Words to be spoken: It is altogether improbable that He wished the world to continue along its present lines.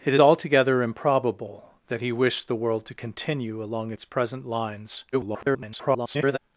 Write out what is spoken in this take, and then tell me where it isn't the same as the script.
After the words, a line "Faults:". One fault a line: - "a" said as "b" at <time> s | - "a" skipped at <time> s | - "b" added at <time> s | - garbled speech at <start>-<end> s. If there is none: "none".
It altogether improbable that He wished the world to continue along its present lines. [garbled]
Faults:
- "is" skipped at 0.1 s
- garbled speech at 5.1-6.4 s